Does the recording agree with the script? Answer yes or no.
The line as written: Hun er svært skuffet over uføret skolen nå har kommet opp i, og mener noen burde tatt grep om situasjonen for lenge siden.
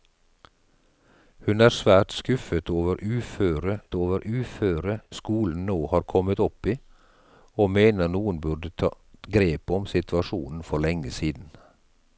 no